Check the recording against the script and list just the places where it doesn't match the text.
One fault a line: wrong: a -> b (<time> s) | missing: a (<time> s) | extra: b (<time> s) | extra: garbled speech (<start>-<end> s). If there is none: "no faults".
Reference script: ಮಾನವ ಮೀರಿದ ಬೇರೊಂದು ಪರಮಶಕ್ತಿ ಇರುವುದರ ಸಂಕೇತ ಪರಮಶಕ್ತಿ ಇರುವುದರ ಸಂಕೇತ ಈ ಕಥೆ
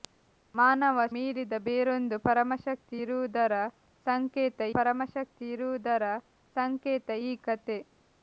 no faults